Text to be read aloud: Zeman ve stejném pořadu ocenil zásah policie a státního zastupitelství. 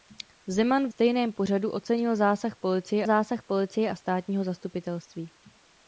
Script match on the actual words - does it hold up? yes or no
no